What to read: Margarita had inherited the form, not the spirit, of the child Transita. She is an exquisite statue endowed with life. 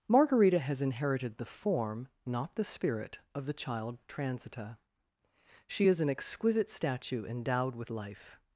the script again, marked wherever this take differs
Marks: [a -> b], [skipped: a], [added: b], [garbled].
Margarita [had -> has] inherited the form, not the spirit, of the child Transita. She is an exquisite statue endowed with life.